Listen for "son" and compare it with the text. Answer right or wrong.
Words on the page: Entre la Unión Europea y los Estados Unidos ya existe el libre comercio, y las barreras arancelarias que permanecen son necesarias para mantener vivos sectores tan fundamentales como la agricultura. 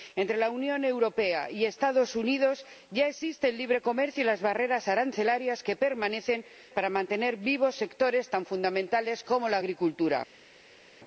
wrong